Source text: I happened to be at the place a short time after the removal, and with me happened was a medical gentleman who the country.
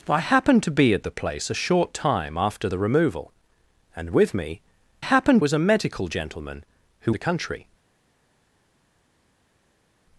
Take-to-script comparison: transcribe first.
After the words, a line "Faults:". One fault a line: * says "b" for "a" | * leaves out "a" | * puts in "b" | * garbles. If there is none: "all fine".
I happened to be at the place a short time after the removal, and with me happened was a medical gentleman who the country.
Faults:
all fine